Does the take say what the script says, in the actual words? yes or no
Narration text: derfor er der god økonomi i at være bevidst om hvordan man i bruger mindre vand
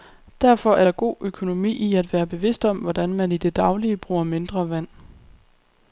no